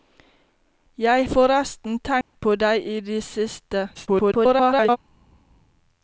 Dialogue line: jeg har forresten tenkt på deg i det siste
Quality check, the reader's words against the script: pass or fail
fail